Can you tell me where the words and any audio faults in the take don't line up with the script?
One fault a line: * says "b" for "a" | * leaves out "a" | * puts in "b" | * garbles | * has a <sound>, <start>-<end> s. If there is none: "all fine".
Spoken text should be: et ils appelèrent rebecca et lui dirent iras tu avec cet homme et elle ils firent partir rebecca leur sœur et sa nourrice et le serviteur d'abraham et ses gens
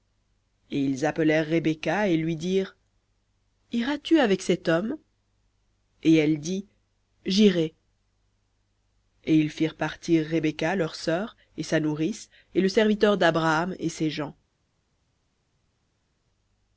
* puts in "dit jirai et"